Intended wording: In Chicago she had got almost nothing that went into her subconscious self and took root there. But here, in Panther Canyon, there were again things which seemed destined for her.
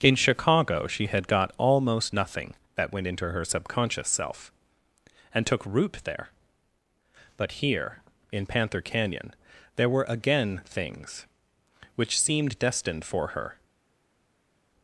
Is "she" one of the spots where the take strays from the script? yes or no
no